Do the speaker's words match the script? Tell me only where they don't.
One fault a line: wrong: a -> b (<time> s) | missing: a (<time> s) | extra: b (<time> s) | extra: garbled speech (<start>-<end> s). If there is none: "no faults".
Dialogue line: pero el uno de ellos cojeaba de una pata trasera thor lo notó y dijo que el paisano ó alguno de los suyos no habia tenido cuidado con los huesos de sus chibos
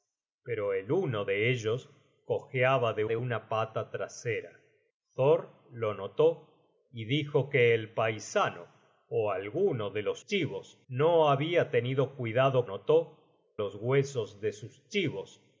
extra: de (3.0 s)
wrong: suyos -> chibos (10.2 s)
wrong: con -> notó (12.6 s)